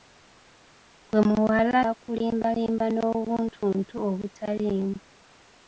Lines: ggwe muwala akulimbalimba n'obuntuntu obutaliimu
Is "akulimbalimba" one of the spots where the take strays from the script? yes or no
no